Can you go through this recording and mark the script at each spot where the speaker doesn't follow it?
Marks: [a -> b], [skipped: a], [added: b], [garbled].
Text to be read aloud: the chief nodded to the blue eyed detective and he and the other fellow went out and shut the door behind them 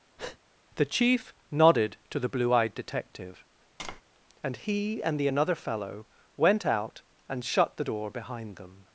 the chief nodded to the blue eyed detective and he and the [other -> another] fellow went out and shut the door behind them